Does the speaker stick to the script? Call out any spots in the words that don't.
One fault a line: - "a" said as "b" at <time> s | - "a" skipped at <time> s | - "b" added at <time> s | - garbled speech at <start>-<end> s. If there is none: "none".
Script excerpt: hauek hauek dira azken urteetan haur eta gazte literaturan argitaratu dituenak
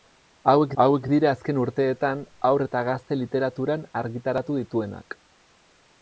none